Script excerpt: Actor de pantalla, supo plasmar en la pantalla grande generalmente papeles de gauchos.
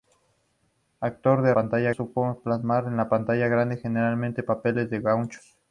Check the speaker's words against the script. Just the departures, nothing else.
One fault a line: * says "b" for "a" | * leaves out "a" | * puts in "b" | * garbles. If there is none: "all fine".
all fine